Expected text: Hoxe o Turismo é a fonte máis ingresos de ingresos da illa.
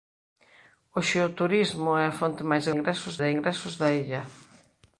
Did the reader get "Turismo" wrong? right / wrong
right